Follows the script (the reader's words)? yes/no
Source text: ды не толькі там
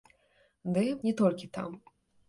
yes